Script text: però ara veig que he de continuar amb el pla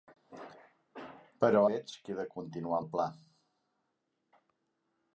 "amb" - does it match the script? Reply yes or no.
no